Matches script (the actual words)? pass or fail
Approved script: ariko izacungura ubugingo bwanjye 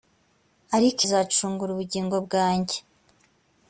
pass